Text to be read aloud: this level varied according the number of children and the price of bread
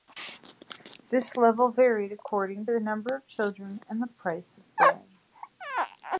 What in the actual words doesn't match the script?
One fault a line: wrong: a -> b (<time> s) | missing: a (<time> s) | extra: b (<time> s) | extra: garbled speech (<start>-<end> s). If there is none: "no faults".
no faults